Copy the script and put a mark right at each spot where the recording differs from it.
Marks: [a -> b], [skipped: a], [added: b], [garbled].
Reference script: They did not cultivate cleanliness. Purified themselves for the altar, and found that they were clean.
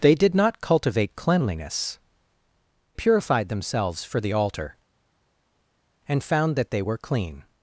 They did not cultivate cleanliness. Purified themselves for the altar, and found that they were clean.